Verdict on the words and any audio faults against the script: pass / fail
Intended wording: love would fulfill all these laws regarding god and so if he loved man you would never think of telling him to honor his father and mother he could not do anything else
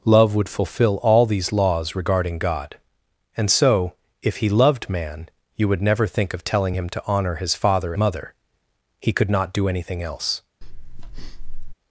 fail